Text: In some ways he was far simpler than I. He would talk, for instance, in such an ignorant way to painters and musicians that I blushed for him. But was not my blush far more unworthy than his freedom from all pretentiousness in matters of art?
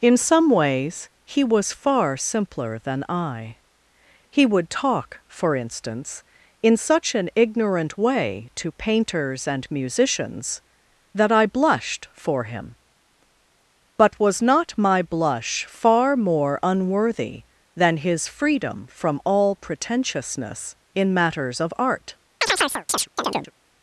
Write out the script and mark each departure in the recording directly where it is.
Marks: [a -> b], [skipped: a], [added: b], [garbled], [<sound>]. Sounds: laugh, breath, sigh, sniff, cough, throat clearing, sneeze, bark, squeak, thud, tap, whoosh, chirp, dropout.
In some ways he was far simpler than I. He would talk, for instance, in such an ignorant way to painters and musicians that I blushed for him. But was not my blush far more unworthy than his freedom from all pretentiousness in matters of art? [chirp]